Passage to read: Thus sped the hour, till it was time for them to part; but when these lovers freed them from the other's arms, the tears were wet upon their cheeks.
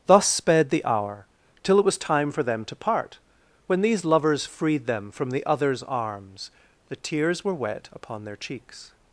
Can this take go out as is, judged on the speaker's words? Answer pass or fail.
fail